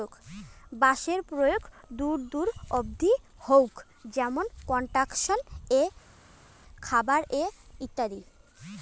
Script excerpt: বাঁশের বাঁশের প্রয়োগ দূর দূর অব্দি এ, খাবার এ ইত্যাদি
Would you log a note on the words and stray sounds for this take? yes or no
yes